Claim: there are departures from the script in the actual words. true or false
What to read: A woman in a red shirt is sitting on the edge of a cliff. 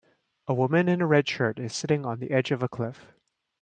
false